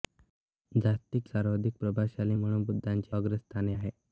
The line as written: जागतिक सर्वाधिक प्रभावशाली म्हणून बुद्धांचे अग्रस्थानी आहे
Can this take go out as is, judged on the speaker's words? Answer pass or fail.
pass